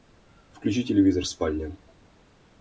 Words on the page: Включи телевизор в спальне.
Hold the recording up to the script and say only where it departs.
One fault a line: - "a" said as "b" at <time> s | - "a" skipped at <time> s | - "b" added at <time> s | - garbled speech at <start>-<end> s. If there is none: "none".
none